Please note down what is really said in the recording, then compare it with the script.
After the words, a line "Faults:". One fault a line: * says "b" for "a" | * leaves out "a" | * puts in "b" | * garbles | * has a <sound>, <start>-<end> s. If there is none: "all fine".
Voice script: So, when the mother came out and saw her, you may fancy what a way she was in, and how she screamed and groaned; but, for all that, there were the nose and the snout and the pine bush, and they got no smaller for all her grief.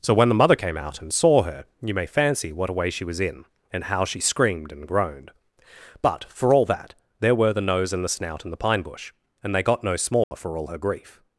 So, when the mother came out and saw her, you may fancy what a way she was in, and how she screamed and groaned; but, for all that, there were the nose and the snout and the pine bush, and they got no smaller for all her grief.
Faults:
* has a dropout, 10.2-10.3 s